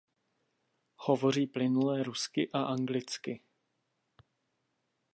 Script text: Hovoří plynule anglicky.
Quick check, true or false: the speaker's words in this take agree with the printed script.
false